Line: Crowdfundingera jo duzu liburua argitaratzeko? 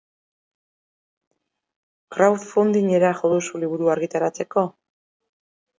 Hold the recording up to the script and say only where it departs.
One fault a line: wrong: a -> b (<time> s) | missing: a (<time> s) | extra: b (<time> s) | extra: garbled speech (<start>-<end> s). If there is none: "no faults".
no faults